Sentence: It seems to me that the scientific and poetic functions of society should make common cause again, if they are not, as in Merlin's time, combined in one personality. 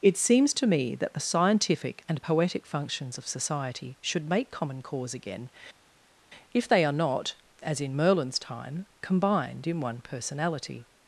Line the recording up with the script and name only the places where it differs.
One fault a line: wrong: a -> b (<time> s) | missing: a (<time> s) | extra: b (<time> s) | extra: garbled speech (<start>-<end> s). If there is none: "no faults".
no faults